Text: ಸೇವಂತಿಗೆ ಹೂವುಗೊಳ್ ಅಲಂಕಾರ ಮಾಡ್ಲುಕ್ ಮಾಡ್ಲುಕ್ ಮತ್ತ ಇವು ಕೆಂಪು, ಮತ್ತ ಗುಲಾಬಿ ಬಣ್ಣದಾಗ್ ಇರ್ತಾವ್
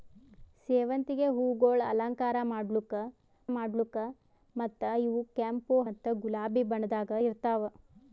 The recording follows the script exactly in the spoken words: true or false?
true